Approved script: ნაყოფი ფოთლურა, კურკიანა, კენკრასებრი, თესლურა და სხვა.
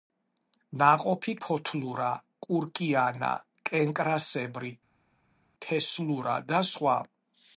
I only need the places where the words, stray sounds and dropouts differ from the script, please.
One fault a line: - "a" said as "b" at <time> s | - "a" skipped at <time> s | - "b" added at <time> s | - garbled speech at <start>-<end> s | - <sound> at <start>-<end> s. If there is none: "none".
none